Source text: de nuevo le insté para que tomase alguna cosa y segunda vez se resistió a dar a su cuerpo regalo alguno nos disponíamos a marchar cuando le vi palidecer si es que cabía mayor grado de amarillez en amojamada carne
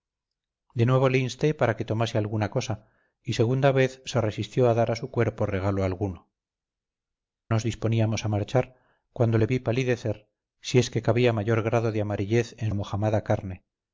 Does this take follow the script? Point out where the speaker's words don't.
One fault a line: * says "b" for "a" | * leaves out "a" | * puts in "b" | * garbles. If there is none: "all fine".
all fine